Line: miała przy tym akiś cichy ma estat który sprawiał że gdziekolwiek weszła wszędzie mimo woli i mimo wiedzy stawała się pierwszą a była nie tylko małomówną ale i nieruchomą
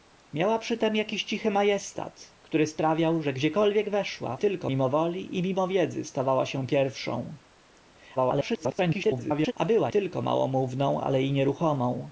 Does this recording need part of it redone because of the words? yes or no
yes